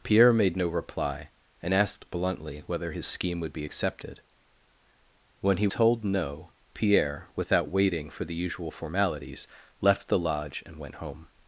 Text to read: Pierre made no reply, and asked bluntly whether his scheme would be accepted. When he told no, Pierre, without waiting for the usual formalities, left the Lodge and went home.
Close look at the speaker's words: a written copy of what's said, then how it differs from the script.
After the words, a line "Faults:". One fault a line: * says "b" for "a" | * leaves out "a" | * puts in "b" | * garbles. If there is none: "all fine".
Pierre made no reply, and asked bluntly whether his scheme would be accepted. When he told no, Pierre, without waiting for the usual formalities, left the Lodge and went home.
Faults:
all fine